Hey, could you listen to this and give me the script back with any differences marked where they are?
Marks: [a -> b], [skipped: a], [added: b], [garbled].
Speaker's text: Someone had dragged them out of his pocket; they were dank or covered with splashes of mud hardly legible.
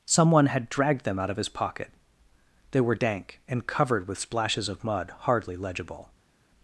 Someone had dragged them out of his pocket; they were dank [or -> and] covered with splashes of mud hardly legible.